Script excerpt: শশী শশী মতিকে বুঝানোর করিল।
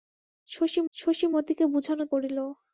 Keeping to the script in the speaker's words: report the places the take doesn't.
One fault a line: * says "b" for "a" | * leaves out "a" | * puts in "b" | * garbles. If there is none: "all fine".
all fine